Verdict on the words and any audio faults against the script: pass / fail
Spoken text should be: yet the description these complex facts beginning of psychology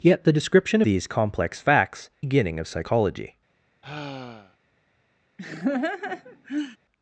fail